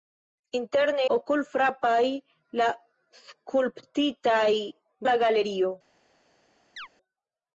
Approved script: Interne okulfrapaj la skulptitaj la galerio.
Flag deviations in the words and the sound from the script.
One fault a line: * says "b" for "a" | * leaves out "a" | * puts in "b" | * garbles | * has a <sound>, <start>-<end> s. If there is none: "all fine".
* has a chirp, 6.8-6.9 s